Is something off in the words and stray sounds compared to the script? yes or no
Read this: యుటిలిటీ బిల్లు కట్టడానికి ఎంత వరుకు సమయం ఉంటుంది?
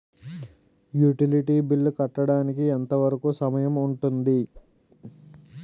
yes